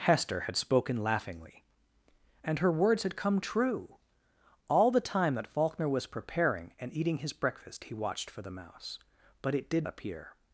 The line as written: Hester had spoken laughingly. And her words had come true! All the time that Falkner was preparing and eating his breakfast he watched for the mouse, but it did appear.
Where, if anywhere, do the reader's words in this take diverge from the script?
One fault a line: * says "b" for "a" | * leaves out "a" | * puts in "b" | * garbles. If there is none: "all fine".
all fine